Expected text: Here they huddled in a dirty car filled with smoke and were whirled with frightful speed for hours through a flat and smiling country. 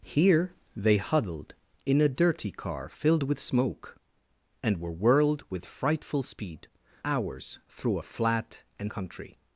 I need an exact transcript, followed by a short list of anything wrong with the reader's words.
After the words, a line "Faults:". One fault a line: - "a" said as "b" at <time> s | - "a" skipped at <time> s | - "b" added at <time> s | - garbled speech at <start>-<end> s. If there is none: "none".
Here they huddled in a dirty car filled with smoke and were whirled with frightful speed hours through a flat and country.
Faults:
- "for" skipped at 6.7 s
- "smiling" skipped at 8.9 s